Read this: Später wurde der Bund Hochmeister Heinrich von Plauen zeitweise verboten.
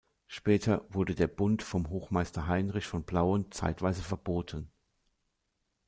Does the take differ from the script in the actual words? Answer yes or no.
yes